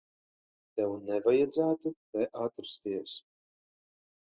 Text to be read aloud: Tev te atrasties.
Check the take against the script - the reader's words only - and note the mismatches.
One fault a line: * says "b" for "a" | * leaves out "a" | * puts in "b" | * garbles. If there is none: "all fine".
* puts in "nevajadzētu"